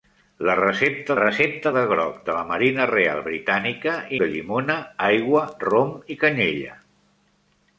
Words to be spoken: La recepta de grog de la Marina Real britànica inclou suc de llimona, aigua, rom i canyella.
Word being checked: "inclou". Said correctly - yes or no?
no